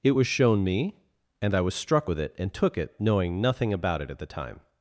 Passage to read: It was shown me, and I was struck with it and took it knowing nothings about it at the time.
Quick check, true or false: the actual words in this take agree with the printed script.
false